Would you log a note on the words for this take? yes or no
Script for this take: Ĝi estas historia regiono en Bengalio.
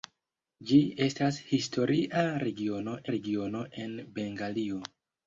yes